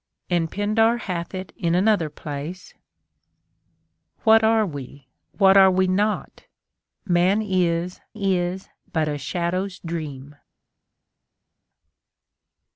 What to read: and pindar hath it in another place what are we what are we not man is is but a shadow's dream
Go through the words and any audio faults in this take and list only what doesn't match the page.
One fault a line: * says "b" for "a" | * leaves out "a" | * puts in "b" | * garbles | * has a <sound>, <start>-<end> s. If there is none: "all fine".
all fine